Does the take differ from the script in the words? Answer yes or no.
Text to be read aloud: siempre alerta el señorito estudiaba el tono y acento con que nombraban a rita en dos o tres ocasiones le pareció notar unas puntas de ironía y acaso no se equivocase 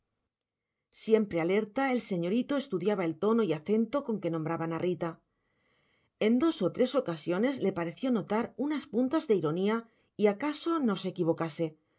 no